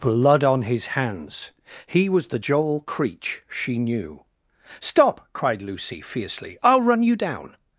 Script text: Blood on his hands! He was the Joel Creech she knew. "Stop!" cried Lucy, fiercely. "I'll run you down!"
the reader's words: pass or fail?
pass